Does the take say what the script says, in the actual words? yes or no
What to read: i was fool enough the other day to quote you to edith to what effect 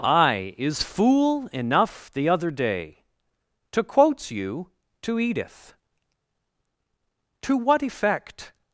no